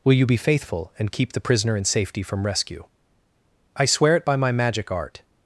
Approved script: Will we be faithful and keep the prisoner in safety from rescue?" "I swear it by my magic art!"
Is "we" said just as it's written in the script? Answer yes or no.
no